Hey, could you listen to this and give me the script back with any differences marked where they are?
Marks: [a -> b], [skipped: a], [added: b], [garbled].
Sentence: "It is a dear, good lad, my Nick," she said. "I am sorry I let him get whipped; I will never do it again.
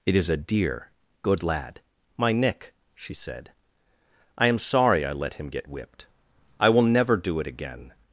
"It is a dear, good lad, my Nick," she said. "I am sorry I let him get whipped; I will never do it again.